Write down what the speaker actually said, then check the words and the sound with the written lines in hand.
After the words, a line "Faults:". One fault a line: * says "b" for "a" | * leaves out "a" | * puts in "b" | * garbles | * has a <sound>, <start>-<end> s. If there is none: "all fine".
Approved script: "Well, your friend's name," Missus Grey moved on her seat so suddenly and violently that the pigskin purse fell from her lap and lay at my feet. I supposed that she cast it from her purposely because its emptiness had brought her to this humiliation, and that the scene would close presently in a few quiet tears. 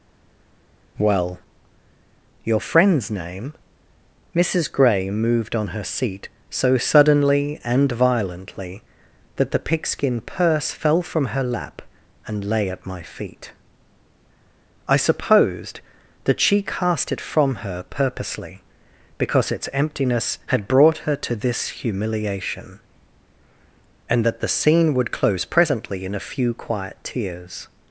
"Well, your friend's name," Missus Grey moved on her seat so suddenly and violently that the pigskin purse fell from her lap and lay at my feet. I supposed that she cast it from her purposely because its emptiness had brought her to this humiliation, and that the scene would close presently in a few quiet tears.
Faults:
all fine